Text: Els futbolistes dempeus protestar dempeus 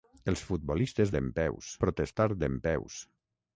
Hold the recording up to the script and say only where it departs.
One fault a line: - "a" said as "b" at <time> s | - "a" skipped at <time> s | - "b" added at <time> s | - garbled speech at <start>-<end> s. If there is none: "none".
none